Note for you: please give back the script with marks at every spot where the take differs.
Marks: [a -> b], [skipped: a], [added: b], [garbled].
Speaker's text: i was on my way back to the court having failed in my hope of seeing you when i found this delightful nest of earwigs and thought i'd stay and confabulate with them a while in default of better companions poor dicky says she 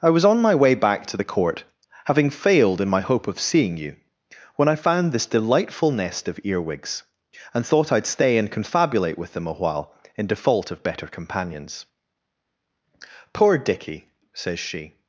i was on my way back to the court having failed in my hope of seeing you when i found this delightful nest of earwigs and thought i'd stay and confabulate with them a while in default of better companions poor dicky says she